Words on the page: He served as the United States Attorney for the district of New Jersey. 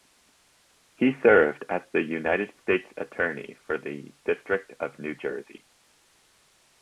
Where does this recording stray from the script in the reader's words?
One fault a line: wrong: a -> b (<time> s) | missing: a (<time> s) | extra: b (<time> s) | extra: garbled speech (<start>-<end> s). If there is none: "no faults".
no faults